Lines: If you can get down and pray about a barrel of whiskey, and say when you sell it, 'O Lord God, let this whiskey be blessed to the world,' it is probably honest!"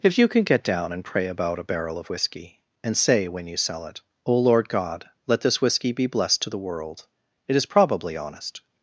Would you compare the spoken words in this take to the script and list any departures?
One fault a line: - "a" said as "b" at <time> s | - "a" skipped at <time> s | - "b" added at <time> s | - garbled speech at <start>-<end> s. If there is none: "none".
none